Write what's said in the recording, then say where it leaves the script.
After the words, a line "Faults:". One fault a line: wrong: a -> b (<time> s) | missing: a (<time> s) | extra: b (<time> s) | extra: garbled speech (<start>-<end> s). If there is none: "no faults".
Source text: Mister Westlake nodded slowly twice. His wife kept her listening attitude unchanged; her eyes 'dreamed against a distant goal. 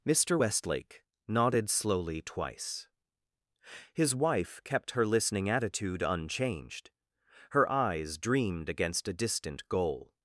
Mister Westlake nodded slowly twice. His wife kept her listening attitude unchanged; her eyes 'dreamed against a distant goal.
Faults:
no faults